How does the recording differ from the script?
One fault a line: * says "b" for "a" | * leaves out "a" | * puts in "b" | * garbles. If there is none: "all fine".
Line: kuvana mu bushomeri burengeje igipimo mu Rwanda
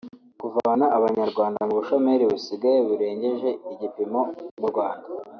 * puts in "abanyarwanda"
* puts in "busigaye"